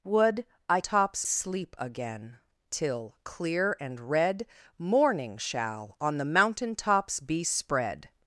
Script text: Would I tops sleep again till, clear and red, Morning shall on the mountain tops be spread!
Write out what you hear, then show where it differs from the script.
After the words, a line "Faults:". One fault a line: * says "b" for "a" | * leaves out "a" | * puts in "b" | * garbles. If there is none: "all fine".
Would I tops sleep again till, clear and red, Morning shall on the mountain tops be spread!
Faults:
all fine